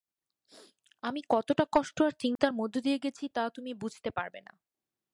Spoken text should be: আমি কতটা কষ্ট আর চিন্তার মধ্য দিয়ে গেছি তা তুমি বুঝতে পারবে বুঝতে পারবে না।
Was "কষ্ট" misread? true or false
false